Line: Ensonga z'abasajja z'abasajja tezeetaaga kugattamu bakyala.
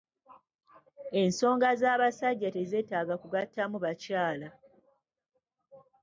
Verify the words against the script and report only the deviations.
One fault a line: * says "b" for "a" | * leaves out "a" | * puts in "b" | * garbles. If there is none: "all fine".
* leaves out "z'abasajja"